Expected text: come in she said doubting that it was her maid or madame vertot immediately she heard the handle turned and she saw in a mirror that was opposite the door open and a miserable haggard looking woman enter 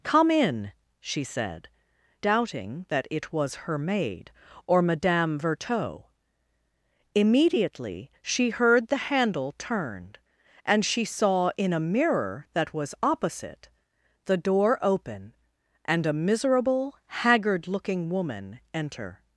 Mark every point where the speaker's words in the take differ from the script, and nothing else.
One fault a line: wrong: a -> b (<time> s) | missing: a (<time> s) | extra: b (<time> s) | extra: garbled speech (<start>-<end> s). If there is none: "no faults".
no faults